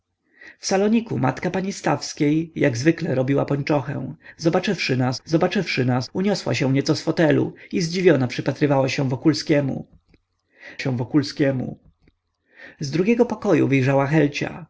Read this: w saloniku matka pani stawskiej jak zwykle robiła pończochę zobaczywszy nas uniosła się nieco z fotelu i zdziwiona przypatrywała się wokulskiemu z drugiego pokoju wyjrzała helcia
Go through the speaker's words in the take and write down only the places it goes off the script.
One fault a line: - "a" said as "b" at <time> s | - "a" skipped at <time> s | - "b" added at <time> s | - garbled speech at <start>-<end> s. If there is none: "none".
- "zobaczywszy nas" added at 5.2 s
- "się wokulskiemu" added at 10.8 s